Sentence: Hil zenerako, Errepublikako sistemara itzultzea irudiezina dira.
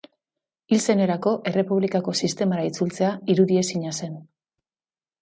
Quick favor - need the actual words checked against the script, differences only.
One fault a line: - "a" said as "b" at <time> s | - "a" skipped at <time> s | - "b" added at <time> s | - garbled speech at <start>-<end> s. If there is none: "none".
- "dira" said as "zen" at 4.0 s